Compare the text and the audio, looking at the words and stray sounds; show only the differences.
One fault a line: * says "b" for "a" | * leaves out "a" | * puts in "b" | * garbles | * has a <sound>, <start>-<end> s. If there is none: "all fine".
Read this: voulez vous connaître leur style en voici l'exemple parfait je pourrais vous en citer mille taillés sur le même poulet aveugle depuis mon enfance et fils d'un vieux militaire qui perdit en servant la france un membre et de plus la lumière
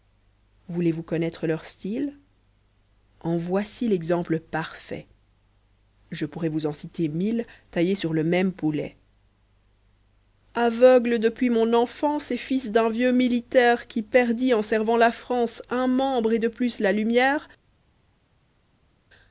all fine